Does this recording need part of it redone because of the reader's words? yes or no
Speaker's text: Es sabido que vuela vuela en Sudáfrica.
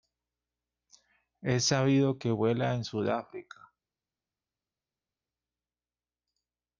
yes